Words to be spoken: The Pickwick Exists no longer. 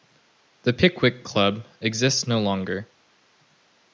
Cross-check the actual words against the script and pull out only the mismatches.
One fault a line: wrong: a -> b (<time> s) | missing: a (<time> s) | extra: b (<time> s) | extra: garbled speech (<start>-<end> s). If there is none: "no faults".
extra: Club (1.2 s)